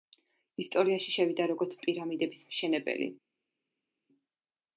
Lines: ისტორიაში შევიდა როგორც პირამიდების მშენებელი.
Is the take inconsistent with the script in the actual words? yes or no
no